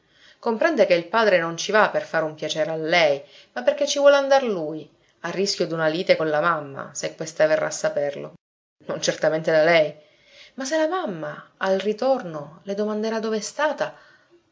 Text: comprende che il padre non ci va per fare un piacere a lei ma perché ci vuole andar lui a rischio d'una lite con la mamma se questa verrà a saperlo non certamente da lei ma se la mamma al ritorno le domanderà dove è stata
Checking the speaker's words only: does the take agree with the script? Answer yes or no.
yes